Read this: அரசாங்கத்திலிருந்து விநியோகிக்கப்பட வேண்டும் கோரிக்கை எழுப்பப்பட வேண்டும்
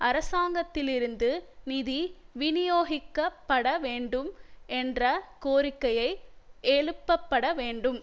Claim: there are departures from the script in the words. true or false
true